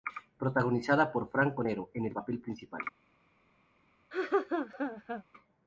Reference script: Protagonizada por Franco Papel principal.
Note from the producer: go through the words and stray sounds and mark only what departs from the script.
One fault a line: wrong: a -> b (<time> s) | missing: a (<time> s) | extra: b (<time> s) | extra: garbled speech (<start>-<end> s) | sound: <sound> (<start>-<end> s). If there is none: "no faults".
extra: Nero en el (1.6 s)
sound: laugh (4.1-5.2 s)